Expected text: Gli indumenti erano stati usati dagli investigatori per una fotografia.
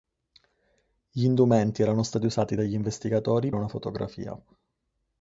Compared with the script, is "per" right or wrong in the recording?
wrong